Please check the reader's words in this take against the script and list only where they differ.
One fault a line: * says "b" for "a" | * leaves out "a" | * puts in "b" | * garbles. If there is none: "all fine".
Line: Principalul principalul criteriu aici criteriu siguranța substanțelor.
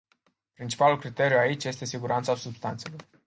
* leaves out "principalul"
* says "este" for "criteriu"